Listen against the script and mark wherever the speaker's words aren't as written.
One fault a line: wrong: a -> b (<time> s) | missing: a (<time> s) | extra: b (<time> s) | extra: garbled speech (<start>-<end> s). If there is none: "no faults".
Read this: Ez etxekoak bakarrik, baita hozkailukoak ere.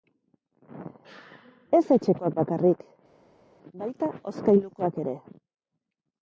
no faults